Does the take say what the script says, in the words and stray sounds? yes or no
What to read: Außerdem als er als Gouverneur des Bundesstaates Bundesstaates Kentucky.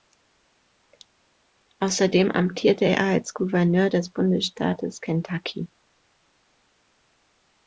no